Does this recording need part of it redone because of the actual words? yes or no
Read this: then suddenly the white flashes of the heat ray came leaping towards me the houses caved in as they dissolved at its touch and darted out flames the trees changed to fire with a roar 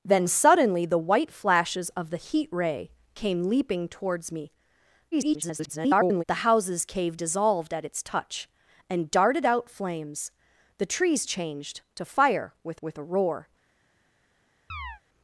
yes